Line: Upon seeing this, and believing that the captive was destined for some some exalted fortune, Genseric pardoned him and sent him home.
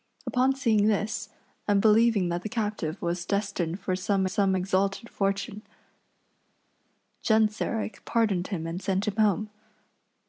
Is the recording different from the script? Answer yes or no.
no